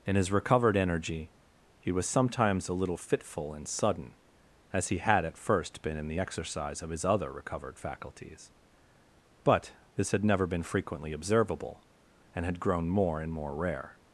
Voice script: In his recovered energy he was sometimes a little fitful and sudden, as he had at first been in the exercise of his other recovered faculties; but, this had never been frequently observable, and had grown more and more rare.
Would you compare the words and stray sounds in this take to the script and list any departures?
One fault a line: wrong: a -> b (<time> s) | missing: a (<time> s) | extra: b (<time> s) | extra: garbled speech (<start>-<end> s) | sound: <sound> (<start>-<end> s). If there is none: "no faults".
no faults